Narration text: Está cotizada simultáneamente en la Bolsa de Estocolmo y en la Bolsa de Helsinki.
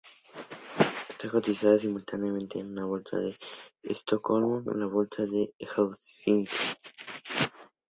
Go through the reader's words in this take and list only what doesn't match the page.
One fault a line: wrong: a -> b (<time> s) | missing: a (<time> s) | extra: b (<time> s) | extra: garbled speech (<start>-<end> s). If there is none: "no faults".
no faults